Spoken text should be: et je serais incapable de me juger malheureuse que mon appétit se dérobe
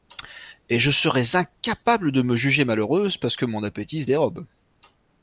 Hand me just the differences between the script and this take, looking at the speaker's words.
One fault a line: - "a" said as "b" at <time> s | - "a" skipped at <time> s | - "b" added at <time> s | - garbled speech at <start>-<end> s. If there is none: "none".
- "parce" added at 3.2 s